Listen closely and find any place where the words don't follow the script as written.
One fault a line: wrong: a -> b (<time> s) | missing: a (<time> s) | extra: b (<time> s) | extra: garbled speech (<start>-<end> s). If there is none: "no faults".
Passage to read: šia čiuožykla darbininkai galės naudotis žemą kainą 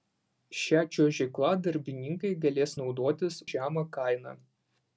no faults